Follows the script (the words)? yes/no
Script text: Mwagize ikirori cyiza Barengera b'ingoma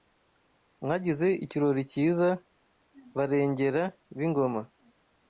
yes